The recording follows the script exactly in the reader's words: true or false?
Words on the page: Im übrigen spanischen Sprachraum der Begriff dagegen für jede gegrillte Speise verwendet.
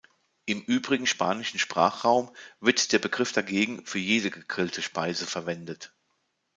false